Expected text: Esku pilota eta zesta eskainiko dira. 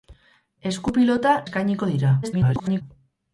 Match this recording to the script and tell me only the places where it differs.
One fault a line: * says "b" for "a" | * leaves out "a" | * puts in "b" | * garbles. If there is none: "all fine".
* leaves out "eta zesta"
* garbles